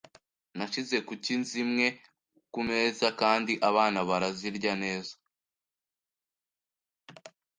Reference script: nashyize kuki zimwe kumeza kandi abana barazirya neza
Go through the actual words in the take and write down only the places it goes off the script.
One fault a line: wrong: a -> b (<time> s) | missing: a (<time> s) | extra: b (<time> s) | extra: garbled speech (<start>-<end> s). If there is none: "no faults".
no faults